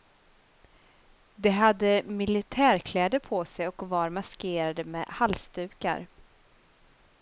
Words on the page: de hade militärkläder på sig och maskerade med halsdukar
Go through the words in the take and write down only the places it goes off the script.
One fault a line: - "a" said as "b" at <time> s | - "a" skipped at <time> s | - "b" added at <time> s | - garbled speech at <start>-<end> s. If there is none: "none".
- "var" added at 3.9 s